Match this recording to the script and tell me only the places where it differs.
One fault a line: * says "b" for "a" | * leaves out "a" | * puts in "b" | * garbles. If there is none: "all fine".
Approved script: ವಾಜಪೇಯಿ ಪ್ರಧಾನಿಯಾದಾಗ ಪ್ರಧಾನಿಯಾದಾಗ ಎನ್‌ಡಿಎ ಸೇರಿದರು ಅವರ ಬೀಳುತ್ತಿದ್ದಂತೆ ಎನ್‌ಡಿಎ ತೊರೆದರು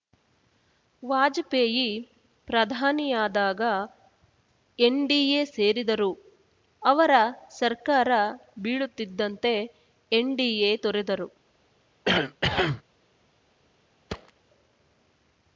* leaves out "ಪ್ರಧಾನಿಯಾದಾಗ"
* puts in "ಸರ್ಕಾರ"